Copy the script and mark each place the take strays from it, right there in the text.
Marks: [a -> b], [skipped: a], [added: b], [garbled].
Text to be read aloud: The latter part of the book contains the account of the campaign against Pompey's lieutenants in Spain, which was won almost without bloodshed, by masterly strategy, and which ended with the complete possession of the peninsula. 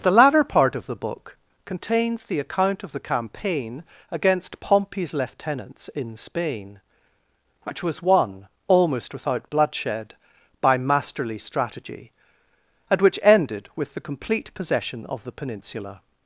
The latter part of the book contains the account of the campaign against Pompey's lieutenants in Spain, which was won almost without bloodshed, by masterly strategy, and which ended with the complete possession of the peninsula.